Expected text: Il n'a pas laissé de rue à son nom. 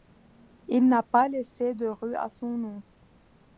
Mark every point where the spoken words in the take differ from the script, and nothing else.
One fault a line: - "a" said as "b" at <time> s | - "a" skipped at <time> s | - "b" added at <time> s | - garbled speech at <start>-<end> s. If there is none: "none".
none